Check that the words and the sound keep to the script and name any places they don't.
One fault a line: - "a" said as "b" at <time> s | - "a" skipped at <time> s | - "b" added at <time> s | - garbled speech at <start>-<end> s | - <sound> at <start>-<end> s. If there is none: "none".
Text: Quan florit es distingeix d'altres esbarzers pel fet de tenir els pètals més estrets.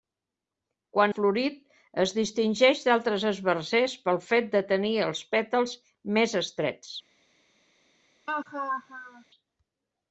- laugh at 8.3-9.2 s